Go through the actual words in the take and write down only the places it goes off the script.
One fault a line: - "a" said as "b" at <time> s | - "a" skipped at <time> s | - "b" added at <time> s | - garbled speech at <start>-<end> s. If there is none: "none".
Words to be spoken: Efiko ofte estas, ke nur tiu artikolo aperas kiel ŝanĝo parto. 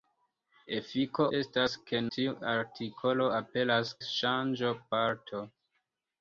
- "ofte" skipped at 1.2 s
- "nur" skipped at 2.0 s
- "kiel" skipped at 3.9 s